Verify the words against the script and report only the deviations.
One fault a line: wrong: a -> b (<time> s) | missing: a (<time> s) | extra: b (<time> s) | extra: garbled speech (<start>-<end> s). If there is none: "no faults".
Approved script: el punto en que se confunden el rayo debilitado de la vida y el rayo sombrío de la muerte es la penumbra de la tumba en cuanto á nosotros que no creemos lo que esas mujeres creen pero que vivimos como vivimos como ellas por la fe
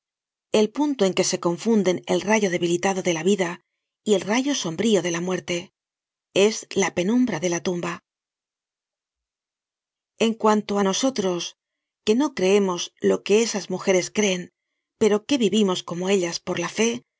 missing: vivimos como (16.1 s)